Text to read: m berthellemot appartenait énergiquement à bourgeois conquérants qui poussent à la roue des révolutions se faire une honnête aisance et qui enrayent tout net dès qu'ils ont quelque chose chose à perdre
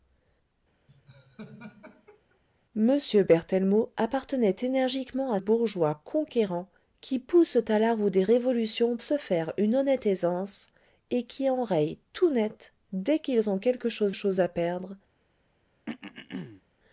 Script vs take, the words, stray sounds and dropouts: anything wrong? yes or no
yes